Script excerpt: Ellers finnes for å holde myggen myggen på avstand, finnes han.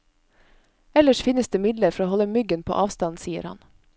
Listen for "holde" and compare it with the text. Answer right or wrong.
right